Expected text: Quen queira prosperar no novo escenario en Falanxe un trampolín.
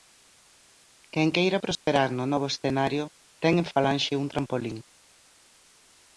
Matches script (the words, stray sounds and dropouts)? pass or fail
fail